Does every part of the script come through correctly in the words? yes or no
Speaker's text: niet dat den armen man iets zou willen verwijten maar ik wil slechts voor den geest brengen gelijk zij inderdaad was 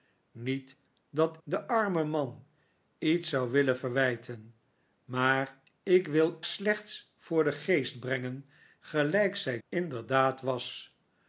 yes